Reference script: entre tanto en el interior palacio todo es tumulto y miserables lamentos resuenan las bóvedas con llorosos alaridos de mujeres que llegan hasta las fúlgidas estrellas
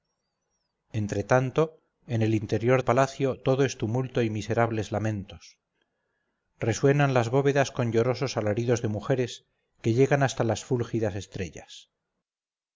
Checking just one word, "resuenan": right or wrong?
right